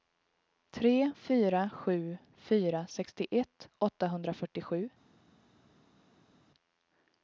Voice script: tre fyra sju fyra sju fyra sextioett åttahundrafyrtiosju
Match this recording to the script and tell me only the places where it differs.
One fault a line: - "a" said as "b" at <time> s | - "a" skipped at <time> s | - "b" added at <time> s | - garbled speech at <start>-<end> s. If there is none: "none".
- "sju fyra" skipped at 2.9 s